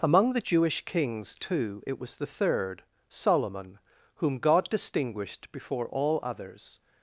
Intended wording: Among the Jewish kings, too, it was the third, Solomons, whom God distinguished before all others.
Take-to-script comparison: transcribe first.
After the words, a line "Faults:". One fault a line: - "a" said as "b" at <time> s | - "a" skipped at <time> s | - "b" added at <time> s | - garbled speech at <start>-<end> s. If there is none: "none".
Among the Jewish kings, too, it was the third, Solomon, whom God distinguished before all others.
Faults:
- "Solomons" said as "Solomon" at 3.1 s